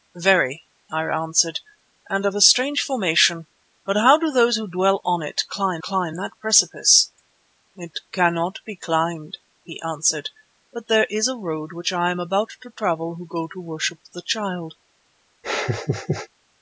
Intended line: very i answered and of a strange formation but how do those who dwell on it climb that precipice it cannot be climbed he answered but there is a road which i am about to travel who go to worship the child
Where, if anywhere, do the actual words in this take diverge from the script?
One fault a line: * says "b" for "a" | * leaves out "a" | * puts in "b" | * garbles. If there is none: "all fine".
* puts in "climb"